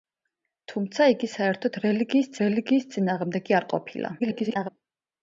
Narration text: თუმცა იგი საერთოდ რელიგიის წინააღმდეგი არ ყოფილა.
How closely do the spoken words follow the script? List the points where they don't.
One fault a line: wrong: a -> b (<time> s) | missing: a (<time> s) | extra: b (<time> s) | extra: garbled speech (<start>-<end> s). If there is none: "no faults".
extra: რელიგიის (2.4 s)
extra: garbled speech (4.2-4.7 s)